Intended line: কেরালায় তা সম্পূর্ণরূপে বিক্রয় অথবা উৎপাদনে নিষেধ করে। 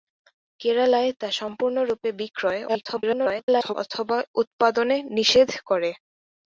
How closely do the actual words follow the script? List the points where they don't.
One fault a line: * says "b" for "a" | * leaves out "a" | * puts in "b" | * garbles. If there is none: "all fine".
* garbles